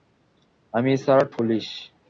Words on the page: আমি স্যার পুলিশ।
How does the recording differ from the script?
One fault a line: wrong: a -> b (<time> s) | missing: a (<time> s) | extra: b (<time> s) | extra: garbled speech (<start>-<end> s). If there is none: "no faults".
no faults